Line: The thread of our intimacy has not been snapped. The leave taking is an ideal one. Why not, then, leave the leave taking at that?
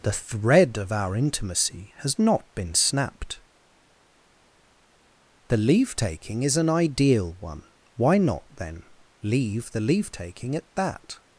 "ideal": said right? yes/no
yes